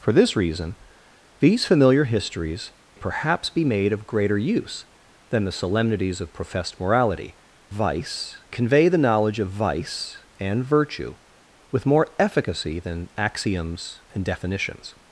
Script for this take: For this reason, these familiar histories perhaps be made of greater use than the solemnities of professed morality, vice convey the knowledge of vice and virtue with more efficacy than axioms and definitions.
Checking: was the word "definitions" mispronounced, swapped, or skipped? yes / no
no